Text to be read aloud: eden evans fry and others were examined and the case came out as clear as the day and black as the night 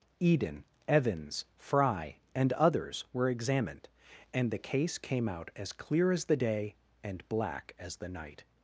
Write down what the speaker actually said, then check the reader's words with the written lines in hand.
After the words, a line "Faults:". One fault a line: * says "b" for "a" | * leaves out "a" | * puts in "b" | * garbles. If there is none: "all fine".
eden evans fry and others were examined and the case came out as clear as the day and black as the night
Faults:
all fine